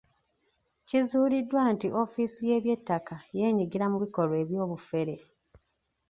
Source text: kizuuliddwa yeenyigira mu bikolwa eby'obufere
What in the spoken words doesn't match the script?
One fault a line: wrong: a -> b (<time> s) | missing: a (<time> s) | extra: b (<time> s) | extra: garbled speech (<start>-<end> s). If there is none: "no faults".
extra: nti ofiisi y'eby'ettaka (1.7 s)